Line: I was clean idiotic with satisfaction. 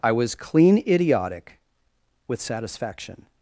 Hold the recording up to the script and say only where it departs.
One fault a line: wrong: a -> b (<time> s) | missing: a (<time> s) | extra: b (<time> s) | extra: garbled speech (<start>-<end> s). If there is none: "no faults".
no faults